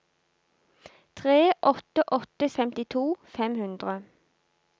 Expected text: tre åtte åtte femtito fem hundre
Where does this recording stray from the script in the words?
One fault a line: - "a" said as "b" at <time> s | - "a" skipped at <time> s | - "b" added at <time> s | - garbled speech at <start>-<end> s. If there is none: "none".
none